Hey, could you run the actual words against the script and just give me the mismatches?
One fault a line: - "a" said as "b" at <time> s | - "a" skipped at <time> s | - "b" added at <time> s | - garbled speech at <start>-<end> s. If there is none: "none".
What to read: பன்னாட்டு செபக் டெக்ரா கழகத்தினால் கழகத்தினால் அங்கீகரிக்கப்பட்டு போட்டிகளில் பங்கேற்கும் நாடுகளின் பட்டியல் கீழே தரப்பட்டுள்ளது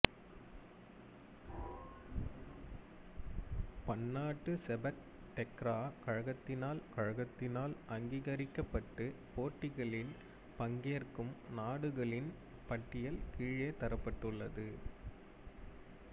none